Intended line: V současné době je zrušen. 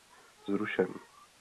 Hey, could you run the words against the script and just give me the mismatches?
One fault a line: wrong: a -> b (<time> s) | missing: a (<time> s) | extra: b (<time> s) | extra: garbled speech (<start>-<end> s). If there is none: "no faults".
missing: současné době je (0.5 s)